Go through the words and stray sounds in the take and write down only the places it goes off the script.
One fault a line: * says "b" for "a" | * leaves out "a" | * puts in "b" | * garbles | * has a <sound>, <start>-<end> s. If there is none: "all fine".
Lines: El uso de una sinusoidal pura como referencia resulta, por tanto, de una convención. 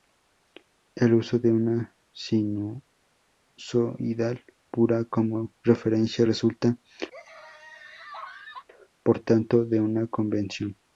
* has a laugh, 7.1-8.7 s